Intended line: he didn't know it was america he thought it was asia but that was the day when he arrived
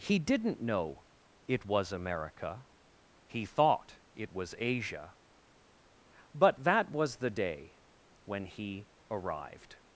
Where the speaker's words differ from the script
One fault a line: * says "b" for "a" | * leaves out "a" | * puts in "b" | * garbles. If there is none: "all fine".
all fine